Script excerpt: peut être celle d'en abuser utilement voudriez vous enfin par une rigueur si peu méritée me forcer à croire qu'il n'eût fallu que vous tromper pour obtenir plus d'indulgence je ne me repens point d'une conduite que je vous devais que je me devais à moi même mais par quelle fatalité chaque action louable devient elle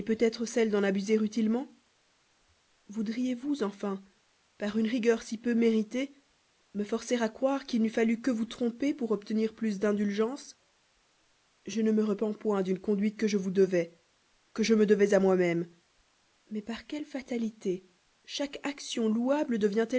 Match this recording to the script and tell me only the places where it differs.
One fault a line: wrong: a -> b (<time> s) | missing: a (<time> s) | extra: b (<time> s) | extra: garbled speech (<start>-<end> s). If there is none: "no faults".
no faults